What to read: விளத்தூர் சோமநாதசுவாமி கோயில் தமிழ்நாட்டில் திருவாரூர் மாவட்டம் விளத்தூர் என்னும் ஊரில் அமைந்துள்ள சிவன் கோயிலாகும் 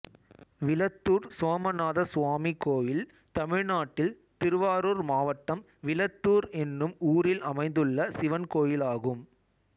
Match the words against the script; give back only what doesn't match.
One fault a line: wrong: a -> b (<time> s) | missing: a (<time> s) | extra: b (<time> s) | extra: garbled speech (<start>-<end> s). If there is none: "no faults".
no faults